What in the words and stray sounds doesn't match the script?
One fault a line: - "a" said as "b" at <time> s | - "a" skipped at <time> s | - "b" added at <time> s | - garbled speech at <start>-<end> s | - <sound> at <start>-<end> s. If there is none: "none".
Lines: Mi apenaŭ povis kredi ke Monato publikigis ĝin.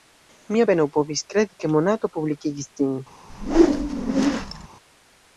- whoosh at 3.3-4.7 s